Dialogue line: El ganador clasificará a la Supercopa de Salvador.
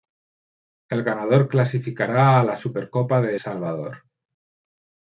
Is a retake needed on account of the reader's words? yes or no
no